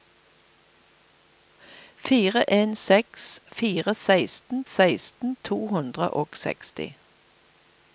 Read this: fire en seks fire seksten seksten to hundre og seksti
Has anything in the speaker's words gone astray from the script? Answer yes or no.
no